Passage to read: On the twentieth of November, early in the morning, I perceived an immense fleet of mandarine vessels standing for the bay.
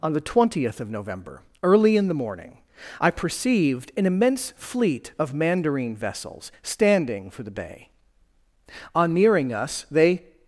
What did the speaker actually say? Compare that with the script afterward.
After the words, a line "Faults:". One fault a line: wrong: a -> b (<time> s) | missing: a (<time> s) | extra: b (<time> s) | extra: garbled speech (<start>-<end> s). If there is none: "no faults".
On the twentieth of November, early in the morning, I perceived an immense fleet of mandarine vessels standing for the bay. On nearing us, they
Faults:
extra: On nearing us they (8.9 s)